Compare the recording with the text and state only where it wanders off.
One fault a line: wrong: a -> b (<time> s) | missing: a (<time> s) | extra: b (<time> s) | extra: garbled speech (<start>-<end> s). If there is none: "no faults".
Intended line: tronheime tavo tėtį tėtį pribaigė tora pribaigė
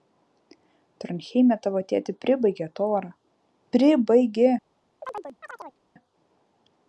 missing: tėtį (2.1 s)